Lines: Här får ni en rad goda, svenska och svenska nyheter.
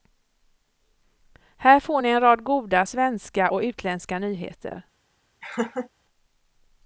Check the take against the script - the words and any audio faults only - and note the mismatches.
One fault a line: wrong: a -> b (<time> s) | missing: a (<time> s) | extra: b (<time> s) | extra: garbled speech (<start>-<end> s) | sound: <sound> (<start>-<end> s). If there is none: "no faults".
wrong: svenska -> utländska (3.6 s)
sound: laugh (5.4-5.9 s)